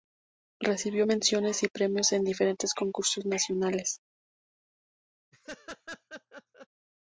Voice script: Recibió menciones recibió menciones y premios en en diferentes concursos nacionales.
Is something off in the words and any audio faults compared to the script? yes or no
yes